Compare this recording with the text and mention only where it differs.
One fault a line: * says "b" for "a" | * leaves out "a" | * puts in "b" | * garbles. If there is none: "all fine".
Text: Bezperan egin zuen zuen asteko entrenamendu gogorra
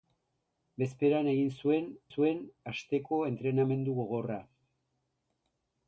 all fine